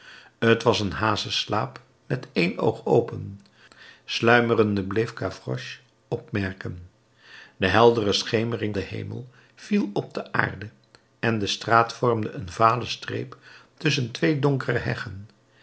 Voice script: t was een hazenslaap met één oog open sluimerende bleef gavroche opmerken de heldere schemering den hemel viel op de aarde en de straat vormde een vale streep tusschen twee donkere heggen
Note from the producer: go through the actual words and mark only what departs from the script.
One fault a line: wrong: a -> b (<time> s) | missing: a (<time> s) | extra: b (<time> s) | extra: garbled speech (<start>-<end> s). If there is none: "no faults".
no faults